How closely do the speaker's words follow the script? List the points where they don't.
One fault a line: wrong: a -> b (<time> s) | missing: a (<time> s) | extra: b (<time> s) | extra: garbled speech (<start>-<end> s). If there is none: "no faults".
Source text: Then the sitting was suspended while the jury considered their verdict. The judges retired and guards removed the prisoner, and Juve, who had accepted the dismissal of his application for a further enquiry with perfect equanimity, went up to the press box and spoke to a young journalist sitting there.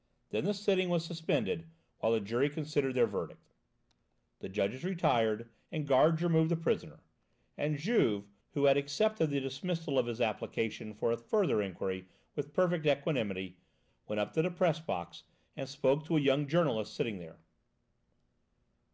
no faults